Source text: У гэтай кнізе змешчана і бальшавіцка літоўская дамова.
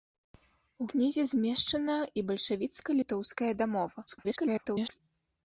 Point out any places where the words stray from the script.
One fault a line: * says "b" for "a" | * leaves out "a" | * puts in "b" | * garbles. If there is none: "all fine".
* leaves out "гэтай"
* garbles